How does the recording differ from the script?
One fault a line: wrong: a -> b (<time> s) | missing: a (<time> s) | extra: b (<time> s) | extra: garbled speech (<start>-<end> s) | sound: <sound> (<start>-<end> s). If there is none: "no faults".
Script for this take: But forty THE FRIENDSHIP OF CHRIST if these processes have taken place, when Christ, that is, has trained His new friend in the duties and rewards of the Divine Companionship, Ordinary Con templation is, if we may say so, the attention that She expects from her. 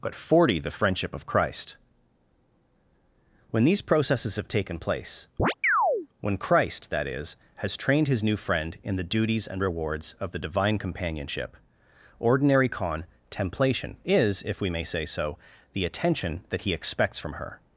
wrong: if -> when (3.5 s)
sound: chirp (5.4-6.1 s)
wrong: She -> He (16.6 s)